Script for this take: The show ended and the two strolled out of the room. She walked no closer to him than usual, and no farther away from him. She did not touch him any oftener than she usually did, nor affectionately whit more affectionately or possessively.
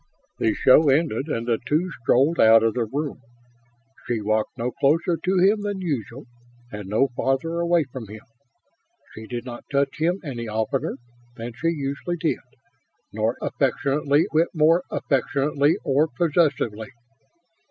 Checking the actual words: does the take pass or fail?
pass